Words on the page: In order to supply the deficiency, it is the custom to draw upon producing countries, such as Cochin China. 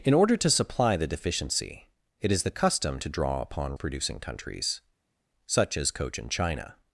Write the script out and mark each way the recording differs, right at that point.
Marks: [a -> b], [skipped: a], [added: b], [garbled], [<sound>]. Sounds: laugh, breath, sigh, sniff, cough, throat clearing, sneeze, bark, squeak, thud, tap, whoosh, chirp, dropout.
In order to supply the deficiency, it is the custom to draw upon producing countries, such as Cochin China.